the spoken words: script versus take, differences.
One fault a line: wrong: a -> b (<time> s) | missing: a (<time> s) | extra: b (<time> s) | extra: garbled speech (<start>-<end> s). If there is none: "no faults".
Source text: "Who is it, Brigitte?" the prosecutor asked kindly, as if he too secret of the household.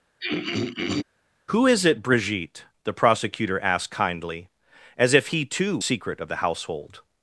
no faults